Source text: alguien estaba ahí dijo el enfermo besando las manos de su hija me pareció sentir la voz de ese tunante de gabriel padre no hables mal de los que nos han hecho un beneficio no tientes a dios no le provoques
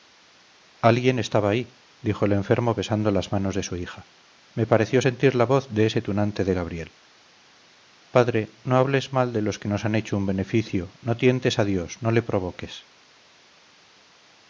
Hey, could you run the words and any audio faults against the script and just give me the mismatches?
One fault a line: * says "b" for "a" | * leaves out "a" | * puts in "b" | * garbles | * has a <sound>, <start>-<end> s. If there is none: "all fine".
all fine